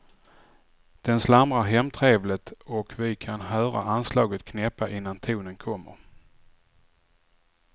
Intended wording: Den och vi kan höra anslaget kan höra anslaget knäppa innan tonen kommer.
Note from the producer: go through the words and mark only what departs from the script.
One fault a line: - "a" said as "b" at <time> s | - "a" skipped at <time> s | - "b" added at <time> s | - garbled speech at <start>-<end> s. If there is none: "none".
- "slamrar hemtrevligt" added at 1.2 s
- "kan höra anslaget" skipped at 4.4 s